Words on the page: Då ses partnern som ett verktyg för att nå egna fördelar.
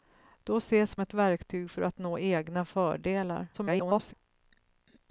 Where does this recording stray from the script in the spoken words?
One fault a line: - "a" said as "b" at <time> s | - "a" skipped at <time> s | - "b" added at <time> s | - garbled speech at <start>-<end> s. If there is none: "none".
- "partnern som" skipped at 0.9 s
- garbled speech at 3.5-4.1 s